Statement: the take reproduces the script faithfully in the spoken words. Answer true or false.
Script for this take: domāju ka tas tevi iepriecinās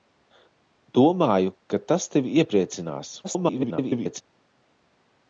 false